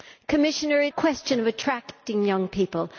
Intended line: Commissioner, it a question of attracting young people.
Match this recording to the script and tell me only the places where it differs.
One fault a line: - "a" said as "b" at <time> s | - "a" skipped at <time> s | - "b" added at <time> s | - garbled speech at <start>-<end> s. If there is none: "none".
none